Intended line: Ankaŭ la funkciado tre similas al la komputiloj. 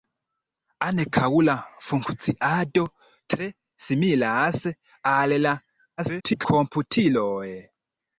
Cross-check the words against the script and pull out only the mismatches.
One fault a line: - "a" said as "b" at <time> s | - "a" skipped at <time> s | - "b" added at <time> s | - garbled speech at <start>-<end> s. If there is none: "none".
- garbled speech at 6.0-6.5 s